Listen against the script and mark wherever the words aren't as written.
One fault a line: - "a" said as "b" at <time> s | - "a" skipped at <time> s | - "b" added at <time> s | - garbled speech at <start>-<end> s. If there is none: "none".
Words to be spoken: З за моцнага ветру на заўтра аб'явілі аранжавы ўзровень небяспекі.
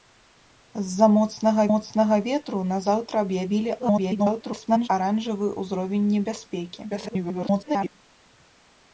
- "моцнага" added at 1.7 s
- garbled speech at 3.8-4.9 s
- garbled speech at 6.9-8.0 s